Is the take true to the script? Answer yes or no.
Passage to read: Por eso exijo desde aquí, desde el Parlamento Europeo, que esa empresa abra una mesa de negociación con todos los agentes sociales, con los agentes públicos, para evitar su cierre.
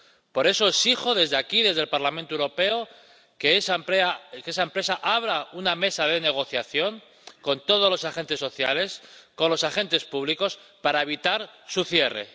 yes